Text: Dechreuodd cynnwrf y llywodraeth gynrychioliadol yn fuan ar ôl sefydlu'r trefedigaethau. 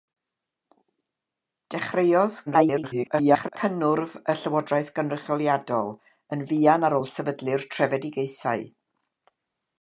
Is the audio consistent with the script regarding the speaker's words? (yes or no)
no